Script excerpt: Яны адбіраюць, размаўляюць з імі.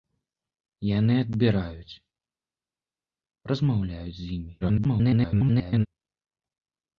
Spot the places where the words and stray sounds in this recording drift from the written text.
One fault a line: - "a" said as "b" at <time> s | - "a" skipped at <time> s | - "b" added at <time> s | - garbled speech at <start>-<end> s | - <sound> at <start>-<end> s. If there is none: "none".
- garbled speech at 4.6-5.9 s